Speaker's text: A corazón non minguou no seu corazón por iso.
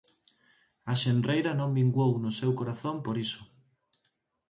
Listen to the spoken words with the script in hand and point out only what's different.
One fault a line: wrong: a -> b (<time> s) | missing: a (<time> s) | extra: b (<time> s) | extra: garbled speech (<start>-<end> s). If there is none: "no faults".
wrong: corazón -> xenreira (1.0 s)